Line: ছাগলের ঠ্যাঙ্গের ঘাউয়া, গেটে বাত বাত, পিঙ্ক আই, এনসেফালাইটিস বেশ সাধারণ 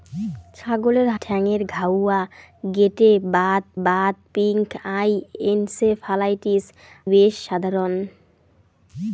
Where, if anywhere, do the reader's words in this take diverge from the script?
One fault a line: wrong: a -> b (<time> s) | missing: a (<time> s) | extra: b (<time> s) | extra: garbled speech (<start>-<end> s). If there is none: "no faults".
no faults